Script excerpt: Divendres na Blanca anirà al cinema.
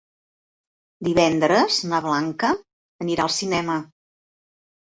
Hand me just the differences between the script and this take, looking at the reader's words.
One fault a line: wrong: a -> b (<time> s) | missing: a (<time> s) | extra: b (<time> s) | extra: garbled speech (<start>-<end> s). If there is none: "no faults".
no faults